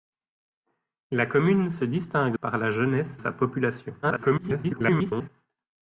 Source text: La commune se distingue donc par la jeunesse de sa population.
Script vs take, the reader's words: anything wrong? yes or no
yes